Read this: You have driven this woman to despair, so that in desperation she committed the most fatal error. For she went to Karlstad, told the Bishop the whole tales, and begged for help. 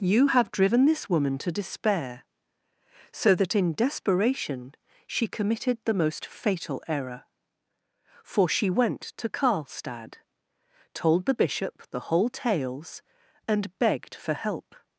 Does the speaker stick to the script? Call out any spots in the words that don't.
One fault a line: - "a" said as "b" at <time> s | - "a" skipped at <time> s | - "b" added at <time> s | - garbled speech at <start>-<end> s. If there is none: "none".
none